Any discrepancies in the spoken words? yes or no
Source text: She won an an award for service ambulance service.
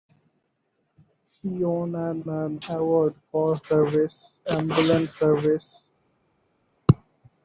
no